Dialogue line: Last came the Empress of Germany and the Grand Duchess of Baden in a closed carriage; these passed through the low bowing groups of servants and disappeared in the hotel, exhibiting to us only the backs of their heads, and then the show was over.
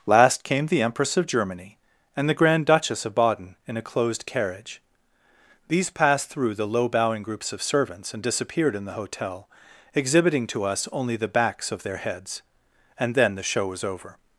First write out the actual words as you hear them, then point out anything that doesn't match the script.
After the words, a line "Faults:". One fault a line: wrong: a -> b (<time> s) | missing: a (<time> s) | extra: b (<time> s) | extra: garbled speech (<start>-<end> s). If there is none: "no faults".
Last came the Empress of Germany and the Grand Duchess of Baden in a closed carriage; these passed through the low bowing groups of servants and disappeared in the hotel, exhibiting to us only the backs of their heads, and then the show was over.
Faults:
no faults